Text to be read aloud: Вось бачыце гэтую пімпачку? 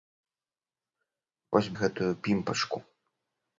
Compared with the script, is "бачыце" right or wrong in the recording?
wrong